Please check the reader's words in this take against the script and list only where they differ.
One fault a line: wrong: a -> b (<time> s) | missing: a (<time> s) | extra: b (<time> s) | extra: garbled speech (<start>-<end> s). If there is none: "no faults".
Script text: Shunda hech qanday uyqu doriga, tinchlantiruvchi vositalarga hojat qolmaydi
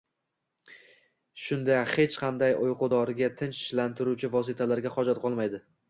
no faults